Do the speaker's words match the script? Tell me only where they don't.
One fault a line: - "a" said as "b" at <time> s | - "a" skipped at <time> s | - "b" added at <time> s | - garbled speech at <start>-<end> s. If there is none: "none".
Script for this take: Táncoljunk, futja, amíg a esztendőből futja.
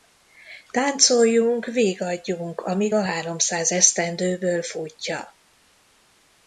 - "futja" said as "vigadjunk" at 1.6 s
- "háromszáz" added at 3.0 s